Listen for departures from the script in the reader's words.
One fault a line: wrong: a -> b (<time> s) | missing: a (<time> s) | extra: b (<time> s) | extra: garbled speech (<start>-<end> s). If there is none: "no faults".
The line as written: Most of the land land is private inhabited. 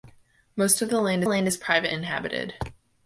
no faults